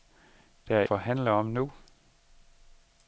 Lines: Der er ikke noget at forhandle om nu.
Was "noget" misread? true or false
true